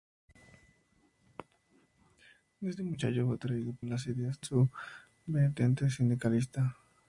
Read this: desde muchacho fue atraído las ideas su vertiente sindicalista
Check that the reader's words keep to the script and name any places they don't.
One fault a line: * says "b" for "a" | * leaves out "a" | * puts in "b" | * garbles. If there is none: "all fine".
all fine